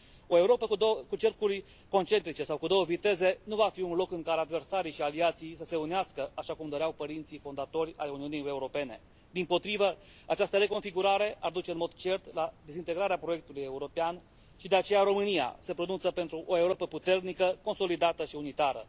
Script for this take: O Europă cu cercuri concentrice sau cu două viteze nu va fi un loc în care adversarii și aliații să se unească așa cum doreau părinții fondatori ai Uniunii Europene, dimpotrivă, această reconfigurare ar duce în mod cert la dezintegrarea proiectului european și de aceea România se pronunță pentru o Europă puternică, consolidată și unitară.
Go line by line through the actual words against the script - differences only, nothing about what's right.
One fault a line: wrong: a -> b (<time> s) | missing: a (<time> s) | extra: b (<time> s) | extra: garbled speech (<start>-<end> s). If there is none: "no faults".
no faults